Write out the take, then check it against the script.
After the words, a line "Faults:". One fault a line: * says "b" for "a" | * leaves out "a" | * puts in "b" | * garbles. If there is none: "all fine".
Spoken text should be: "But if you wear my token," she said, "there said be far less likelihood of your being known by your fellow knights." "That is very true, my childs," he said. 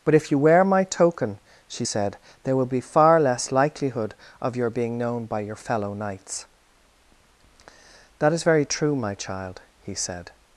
"But if you wear my token," she said, "there will be far less likelihood of your being known by your fellow knights." "That is very true, my child," he said.
Faults:
* says "will" for "said"
* says "child" for "childs"